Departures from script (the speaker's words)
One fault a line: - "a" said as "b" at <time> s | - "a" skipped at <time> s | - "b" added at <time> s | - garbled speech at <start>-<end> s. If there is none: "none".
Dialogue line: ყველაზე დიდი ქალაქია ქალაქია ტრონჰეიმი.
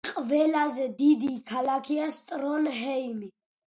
- "ქალაქია" skipped at 2.1 s